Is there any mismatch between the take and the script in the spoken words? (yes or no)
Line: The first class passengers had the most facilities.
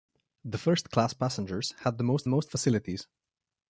yes